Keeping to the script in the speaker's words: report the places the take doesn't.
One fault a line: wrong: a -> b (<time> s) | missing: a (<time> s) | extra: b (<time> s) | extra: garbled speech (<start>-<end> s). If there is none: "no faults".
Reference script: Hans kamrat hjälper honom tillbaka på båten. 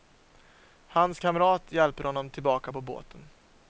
no faults